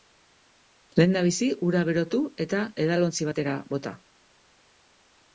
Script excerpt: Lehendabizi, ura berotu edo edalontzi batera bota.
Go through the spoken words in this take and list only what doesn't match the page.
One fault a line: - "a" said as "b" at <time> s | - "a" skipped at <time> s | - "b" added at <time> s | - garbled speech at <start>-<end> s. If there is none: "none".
- "edo" said as "eta" at 2.4 s